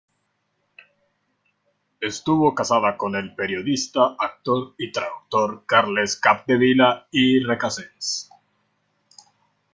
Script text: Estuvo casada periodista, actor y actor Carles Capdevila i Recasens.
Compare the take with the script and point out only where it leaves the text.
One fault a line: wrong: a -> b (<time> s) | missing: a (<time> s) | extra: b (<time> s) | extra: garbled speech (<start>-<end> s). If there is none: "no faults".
extra: con el (3.0 s)
wrong: actor -> traductor (4.9 s)